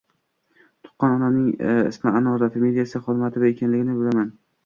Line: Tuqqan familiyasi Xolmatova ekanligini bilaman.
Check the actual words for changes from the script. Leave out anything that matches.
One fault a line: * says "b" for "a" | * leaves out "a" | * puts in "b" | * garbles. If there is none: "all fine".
* puts in "onamning ismi Anora"